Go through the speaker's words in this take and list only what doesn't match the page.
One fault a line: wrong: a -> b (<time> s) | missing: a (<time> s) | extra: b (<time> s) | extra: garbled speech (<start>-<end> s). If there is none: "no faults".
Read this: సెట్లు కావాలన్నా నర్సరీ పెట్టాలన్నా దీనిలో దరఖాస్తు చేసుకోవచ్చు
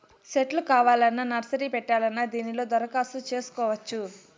no faults